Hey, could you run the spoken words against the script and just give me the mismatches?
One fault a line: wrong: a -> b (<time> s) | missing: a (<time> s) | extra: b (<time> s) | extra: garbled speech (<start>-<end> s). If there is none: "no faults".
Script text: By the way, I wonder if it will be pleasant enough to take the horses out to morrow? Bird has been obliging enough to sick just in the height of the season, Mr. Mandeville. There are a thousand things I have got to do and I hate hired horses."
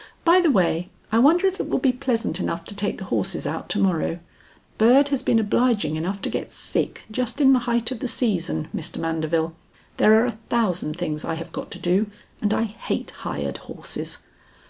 extra: get (6.3 s)